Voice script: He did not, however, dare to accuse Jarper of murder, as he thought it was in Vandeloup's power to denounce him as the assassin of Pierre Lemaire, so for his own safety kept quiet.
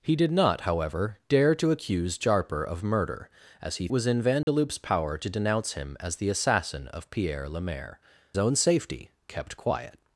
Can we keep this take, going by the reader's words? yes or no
no